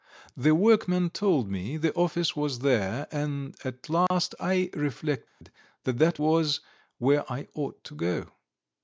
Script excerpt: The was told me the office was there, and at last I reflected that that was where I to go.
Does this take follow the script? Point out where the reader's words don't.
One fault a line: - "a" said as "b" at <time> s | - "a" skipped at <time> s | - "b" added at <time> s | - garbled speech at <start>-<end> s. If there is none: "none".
- "was" said as "workmen" at 0.6 s
- "ought" added at 7.5 s